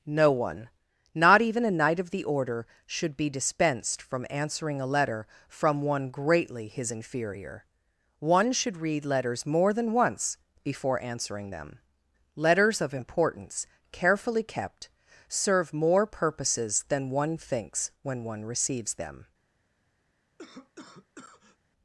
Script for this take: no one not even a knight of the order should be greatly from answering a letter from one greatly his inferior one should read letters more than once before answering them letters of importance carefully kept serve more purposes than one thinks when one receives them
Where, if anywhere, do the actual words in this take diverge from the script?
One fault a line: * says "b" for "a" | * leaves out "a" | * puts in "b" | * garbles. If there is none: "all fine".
* says "dispensed" for "greatly"